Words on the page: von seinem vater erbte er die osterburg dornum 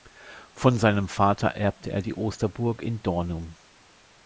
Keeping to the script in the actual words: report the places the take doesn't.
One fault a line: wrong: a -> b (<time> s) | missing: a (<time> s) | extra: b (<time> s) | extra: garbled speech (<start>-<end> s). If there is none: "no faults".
extra: in (2.8 s)